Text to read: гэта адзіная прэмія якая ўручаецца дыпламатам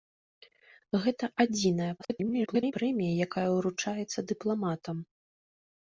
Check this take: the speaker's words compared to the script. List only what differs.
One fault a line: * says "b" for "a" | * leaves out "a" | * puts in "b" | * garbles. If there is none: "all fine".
* garbles